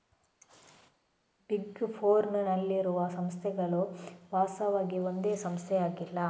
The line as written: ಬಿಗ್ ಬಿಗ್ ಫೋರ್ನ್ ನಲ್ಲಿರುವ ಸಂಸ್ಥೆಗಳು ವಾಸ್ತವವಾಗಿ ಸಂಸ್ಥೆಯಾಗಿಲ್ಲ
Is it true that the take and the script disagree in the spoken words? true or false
true